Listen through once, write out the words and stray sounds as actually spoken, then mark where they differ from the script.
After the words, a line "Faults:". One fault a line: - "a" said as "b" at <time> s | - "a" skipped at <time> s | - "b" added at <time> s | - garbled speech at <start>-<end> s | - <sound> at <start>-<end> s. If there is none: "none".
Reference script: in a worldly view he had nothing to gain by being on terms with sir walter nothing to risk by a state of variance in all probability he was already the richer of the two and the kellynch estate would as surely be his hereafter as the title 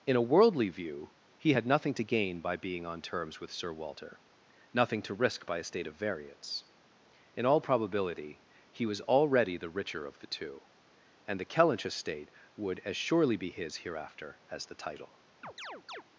in a worldly view he had nothing to gain by being on terms with sir walter nothing to risk by a state of variance in all probability he was already the richer of the two and the kellynch estate would as surely be his hereafter as the title
Faults:
- chirp at 15.4-16.0 s